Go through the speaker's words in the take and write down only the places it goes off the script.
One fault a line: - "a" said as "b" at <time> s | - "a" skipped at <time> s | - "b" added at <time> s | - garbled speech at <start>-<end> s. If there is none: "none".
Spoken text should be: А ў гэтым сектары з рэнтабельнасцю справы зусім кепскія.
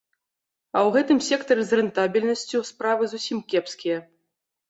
none